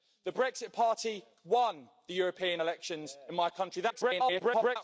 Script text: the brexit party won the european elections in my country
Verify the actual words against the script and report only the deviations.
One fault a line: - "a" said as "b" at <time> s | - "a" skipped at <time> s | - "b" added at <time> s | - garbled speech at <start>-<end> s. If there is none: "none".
- garbled speech at 3.9-4.8 s